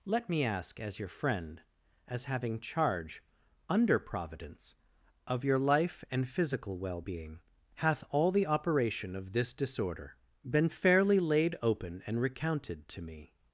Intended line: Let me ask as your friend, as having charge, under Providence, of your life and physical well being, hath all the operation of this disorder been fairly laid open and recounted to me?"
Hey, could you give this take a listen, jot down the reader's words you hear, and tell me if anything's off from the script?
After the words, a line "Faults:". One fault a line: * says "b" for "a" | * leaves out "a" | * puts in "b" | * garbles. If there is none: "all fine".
Let me ask as your friend, as having charge, under Providence, of your life and physical well being, hath all the operation of this disorder been fairly laid open and recounted to me?"
Faults:
all fine